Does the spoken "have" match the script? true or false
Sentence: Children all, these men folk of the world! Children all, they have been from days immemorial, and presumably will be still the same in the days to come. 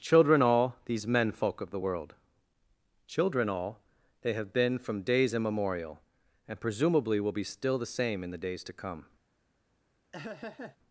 true